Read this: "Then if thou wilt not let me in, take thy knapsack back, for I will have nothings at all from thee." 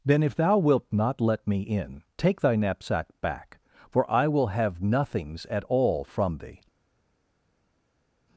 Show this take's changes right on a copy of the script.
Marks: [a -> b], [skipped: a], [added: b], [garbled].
"Then if thou wilt not let me in, take thy knapsack back, for I will have nothings at all from thee."